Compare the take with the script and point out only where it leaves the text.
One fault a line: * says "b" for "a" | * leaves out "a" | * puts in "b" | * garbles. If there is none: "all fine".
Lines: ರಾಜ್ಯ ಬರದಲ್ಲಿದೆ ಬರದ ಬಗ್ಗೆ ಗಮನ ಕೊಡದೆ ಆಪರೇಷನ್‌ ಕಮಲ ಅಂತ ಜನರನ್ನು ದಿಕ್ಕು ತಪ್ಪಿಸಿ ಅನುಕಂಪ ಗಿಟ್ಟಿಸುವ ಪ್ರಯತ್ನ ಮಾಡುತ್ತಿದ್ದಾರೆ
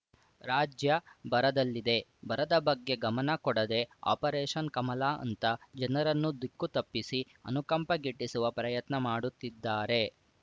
all fine